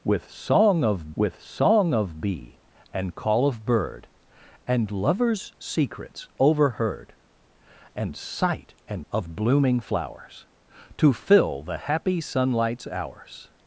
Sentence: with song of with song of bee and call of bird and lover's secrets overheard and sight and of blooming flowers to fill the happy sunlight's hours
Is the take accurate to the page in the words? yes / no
yes